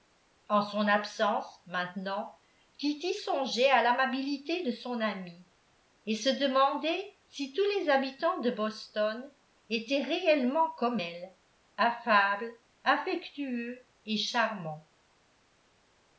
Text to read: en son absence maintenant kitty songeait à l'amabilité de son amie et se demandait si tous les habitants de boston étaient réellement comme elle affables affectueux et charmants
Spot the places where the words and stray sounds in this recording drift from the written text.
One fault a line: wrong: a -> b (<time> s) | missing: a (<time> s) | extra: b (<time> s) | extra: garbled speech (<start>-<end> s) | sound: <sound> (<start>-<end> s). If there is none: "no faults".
no faults